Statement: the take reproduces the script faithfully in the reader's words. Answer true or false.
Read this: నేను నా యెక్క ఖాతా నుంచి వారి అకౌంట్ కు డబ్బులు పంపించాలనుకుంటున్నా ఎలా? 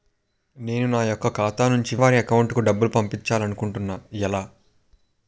true